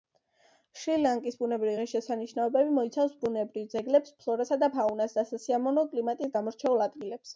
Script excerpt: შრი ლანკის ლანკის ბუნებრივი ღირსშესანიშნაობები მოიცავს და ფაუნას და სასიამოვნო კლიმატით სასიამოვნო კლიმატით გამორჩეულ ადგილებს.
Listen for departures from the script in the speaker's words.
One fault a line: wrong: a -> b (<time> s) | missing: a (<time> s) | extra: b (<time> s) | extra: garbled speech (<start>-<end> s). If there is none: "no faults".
missing: ლანკის (1.4 s)
extra: ბუნებრივ ძეგლებს ფლორასა (3.3 s)
missing: სასიამოვნო კლიმატით (6.4 s)